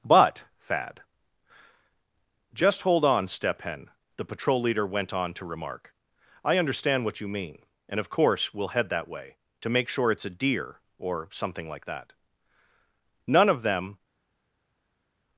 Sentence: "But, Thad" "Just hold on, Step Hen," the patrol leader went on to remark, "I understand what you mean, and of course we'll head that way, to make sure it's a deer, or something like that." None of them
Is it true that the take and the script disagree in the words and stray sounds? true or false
false